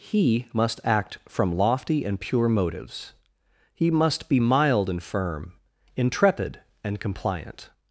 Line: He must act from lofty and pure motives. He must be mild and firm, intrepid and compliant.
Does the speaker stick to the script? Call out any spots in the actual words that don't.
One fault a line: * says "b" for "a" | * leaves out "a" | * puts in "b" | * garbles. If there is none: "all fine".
all fine